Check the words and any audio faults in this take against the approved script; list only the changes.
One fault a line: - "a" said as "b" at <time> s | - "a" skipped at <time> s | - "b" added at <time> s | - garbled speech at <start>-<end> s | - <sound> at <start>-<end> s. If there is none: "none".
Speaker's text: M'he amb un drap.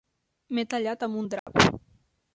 - "tallat" added at 0.7 s
- dropout at 1.4-1.5 s